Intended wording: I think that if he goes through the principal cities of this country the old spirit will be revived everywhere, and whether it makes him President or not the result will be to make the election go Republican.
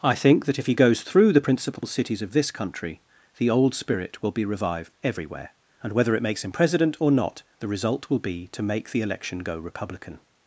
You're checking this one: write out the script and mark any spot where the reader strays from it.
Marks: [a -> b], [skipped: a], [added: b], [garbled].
I think that if he goes through the principal cities of this country the old spirit will be revived everywhere, and whether it makes him President or not the result will be to make the election go Republican.